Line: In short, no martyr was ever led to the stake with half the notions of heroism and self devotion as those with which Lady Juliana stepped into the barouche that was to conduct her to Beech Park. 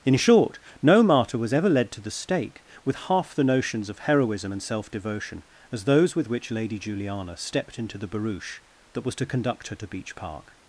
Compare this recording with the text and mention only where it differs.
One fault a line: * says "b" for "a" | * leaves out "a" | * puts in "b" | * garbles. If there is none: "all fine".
all fine